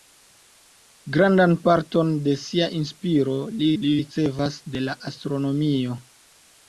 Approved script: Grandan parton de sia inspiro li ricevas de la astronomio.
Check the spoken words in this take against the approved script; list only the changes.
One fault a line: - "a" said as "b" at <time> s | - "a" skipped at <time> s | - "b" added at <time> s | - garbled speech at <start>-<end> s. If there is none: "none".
- "li" added at 3.8 s